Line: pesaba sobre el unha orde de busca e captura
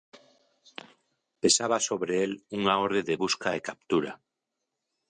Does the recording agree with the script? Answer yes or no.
yes